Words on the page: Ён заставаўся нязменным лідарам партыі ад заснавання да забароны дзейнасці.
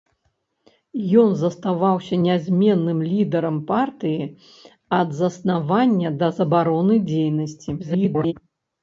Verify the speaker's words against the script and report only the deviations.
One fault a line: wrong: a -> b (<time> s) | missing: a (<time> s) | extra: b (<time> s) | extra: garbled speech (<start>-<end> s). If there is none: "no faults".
extra: garbled speech (7.8-8.3 s)